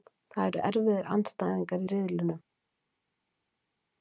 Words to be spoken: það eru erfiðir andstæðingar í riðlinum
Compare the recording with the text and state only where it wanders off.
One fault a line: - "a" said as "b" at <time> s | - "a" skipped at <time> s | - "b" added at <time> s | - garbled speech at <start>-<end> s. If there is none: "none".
none